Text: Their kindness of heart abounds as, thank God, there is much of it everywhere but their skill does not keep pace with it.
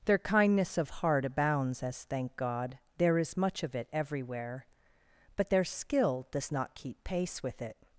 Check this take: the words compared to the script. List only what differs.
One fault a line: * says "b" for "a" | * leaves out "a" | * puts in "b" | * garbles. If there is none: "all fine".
all fine